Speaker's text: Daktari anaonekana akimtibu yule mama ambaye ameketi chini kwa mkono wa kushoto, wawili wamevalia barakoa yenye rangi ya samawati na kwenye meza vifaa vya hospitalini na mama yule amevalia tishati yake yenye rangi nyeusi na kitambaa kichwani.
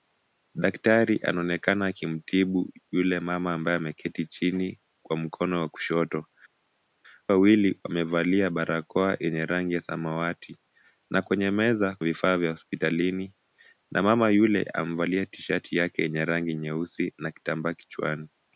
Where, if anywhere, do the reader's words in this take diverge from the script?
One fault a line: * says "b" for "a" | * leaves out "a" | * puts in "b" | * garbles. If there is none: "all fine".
all fine